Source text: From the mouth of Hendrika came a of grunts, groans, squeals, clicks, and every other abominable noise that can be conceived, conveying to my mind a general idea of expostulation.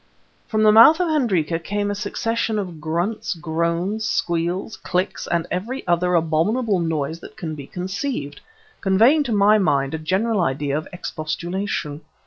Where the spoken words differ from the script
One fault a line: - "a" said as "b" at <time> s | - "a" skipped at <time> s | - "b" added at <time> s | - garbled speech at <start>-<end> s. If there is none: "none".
- "succession" added at 1.9 s